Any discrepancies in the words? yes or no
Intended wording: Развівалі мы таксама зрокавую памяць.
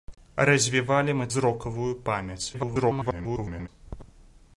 yes